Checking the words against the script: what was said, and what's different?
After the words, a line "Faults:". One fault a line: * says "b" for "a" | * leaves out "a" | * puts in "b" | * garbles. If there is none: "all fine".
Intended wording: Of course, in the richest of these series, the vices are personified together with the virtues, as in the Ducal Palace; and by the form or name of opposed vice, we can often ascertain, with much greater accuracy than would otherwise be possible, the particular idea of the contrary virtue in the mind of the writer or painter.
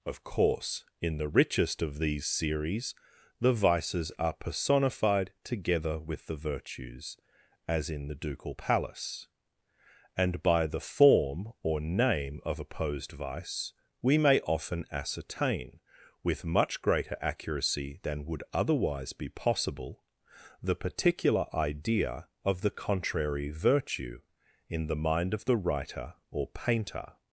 Of course, in the richest of these series, the vices are personified together with the virtues, as in the Ducal Palace; and by the form or name of opposed vice, we may often ascertain, with much greater accuracy than would otherwise be possible, the particular idea of the contrary virtue in the mind of the writer or painter.
Faults:
* says "may" for "can"